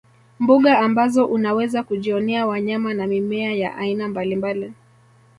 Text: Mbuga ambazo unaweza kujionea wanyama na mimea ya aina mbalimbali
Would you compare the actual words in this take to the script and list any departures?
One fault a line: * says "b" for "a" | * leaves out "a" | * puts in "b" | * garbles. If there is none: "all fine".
all fine